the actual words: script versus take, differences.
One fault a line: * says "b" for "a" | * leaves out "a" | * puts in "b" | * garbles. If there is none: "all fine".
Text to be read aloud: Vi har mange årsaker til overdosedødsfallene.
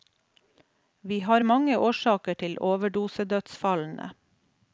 all fine